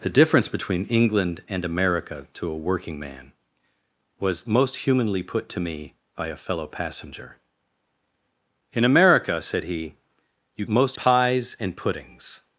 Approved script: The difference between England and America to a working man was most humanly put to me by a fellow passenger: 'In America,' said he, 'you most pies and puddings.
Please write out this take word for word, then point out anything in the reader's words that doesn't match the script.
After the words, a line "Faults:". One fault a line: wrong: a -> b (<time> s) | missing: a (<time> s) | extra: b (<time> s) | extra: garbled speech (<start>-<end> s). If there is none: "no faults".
The difference between England and America to a working man was most humanly put to me by a fellow passenger: 'In America,' said he, 'you most pies and puddings.
Faults:
no faults